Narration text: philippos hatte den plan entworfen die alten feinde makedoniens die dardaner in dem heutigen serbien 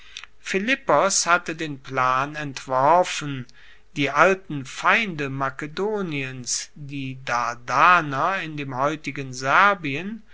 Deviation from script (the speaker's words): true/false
false